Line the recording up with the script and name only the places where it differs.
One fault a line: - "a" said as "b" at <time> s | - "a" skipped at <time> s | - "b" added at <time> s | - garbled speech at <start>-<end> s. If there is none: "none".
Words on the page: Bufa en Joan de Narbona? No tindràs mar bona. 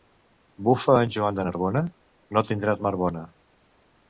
none